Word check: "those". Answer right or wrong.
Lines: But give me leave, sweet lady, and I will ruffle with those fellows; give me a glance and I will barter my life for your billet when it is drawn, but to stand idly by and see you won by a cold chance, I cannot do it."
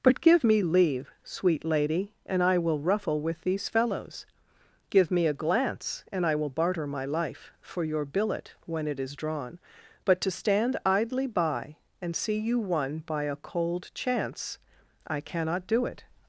wrong